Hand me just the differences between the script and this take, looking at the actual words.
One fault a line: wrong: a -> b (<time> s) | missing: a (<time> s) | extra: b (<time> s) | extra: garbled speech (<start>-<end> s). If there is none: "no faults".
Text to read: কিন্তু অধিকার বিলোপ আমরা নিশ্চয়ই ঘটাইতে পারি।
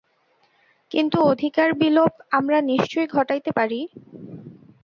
no faults